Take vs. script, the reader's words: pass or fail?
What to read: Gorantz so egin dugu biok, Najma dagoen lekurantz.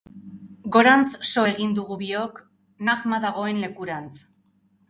pass